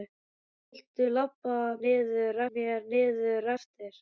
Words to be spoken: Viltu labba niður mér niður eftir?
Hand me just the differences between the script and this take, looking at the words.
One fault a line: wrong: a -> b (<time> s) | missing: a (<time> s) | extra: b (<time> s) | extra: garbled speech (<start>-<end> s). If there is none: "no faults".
no faults